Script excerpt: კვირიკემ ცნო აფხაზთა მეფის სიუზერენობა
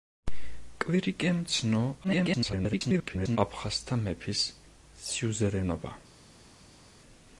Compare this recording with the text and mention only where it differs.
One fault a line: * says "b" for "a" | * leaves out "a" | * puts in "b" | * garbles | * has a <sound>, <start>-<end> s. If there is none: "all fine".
* garbles